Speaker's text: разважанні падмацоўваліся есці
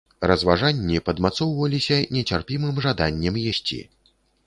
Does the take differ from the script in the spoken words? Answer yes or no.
yes